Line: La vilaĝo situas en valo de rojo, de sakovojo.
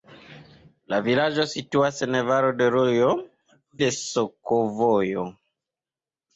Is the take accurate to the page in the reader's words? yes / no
yes